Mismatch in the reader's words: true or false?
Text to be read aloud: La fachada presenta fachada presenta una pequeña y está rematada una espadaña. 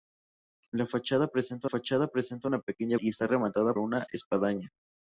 false